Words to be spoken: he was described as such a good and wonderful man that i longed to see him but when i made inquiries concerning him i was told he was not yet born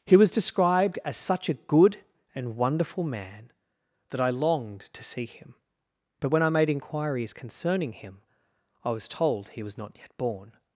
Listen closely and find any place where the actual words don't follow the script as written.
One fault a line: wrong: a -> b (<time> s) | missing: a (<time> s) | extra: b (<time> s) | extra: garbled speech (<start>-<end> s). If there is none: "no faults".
no faults